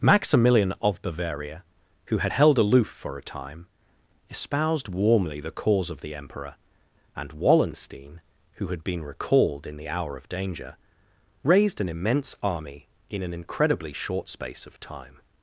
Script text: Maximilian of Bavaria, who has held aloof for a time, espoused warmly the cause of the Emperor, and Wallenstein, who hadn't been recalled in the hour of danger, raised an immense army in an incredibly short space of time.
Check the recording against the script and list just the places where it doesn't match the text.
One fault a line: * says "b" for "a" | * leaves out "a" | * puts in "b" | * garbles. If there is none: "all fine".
* says "had" for "has"
* says "had" for "hadn't"